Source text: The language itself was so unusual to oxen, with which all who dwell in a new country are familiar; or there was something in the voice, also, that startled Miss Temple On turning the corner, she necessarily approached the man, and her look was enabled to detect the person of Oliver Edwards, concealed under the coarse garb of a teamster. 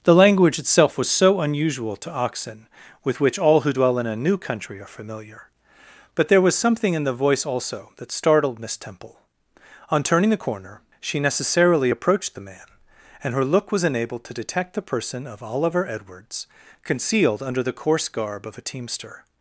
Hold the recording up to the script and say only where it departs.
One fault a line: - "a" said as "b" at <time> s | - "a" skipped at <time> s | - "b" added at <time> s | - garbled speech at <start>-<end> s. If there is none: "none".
- "or" said as "but" at 6.1 s